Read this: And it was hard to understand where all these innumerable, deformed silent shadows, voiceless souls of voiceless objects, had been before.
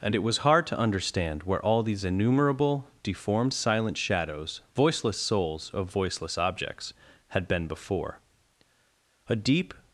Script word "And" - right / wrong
right